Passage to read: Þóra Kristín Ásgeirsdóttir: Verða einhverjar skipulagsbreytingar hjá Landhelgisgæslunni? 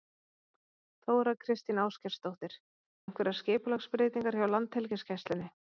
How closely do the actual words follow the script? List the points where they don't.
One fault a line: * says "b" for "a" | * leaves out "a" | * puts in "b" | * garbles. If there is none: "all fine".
* leaves out "Verða"